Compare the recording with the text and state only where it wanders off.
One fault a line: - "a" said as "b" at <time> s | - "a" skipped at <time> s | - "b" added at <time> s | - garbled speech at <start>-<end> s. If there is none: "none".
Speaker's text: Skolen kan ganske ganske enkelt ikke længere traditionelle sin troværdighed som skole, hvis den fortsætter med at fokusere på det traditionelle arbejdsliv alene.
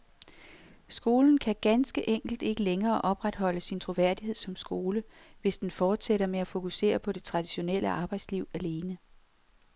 - "ganske" skipped at 2.1 s
- "traditionelle" said as "opretholde" at 3.0 s